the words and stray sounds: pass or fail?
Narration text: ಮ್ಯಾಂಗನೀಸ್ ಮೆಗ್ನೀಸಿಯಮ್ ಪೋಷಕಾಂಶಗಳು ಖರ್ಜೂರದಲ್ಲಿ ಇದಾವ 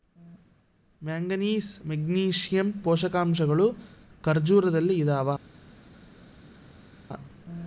pass